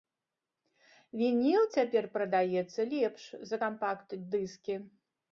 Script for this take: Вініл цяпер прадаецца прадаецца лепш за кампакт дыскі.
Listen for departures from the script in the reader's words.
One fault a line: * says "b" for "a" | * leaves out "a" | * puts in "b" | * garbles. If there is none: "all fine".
* leaves out "прадаецца"